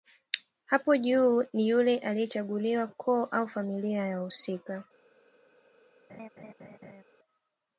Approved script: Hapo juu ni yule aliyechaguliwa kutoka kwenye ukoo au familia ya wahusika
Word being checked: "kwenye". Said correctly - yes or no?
no